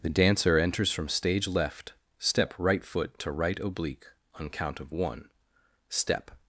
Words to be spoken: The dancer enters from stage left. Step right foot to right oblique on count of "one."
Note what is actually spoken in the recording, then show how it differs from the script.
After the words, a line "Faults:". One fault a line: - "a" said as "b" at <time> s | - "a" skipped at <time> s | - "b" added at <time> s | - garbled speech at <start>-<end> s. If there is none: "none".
The dancer enters from stage left. Step right foot to right oblique on count of "one." Step
Faults:
- "Step" added at 5.9 s